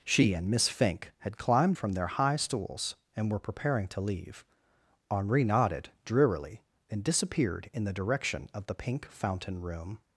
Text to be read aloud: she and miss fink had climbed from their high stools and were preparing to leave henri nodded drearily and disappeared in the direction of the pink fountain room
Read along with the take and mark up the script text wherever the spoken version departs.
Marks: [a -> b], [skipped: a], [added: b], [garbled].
she and miss fink had climbed from their high stools and were preparing to leave henri nodded drearily and disappeared in the direction of the pink fountain room